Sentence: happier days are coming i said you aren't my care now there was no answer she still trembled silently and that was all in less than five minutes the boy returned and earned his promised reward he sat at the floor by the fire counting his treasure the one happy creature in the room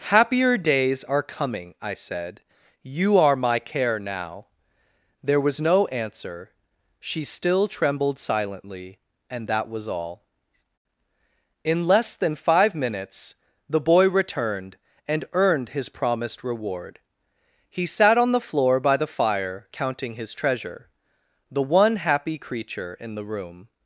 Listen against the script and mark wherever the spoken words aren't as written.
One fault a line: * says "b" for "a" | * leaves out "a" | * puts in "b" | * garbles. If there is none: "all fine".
* says "are" for "aren't"
* says "on" for "at"